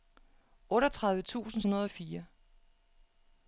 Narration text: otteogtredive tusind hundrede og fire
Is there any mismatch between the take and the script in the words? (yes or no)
no